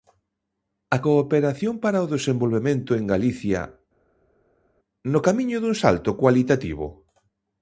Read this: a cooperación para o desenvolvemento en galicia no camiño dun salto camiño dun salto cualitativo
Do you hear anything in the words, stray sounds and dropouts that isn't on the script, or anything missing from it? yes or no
yes